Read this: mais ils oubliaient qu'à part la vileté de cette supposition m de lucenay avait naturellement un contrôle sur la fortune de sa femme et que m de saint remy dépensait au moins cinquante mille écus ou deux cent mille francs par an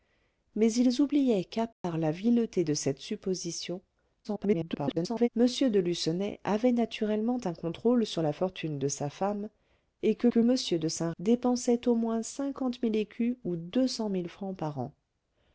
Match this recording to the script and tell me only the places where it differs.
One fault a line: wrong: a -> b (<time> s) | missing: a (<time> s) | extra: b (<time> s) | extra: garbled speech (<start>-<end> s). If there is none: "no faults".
extra: garbled speech (4.2-5.3 s)
extra: que (10.3 s)
missing: remy (11.1 s)